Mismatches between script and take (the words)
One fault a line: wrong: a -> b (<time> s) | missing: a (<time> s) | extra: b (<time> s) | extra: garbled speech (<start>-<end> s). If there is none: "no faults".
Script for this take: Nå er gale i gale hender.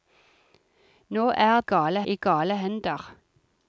no faults